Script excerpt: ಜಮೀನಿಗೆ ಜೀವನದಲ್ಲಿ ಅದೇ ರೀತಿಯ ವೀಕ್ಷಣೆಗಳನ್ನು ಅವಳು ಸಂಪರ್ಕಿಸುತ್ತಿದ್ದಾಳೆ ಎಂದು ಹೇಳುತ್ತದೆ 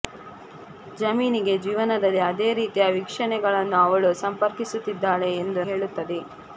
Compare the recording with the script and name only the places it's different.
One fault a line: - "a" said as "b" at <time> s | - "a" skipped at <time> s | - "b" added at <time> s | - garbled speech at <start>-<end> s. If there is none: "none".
none